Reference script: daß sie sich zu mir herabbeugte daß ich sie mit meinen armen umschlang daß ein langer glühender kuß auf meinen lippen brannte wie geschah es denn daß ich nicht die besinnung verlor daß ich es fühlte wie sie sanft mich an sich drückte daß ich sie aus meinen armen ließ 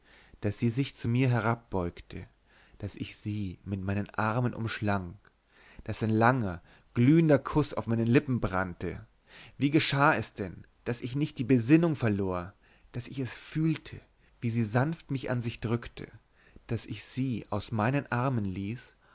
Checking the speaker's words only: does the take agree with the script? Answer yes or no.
yes